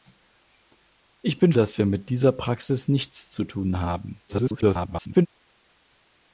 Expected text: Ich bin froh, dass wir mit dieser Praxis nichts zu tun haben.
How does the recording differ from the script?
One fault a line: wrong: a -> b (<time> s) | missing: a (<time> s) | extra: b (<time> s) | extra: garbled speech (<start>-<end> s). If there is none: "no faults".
missing: froh (1.5 s)
extra: garbled speech (4.3-5.3 s)